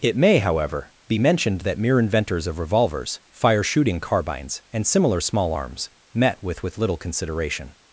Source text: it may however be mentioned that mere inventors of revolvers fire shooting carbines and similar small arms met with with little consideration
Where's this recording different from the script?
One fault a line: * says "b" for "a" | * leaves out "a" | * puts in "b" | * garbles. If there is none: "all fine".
all fine